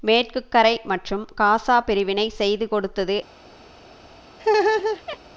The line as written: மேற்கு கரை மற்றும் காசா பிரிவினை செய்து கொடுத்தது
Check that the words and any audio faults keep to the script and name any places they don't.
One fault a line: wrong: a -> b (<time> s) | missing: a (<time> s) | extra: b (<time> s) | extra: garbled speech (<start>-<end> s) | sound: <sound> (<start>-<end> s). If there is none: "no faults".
sound: laugh (4.4-5.2 s)